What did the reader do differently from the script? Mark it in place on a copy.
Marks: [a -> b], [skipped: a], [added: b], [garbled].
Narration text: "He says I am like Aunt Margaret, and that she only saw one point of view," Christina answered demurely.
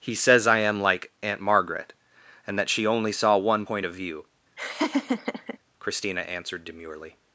"He says I am like Aunt Margaret, and that she only saw one point of view," Christina answered demurely.